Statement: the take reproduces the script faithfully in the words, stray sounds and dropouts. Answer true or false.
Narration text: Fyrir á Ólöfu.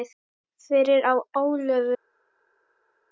true